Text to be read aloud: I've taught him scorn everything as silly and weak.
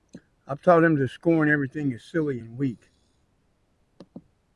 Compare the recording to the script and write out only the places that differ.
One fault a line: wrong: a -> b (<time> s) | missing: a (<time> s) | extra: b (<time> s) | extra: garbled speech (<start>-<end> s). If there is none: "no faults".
extra: to (1.0 s)